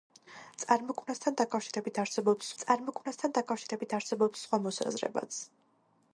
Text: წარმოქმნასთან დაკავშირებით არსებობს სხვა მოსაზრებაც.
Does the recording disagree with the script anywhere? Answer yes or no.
yes